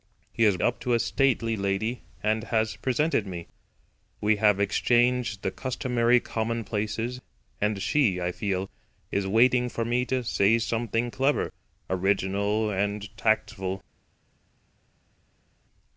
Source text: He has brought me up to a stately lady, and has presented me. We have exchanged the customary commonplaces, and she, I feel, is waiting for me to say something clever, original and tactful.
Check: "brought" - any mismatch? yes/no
yes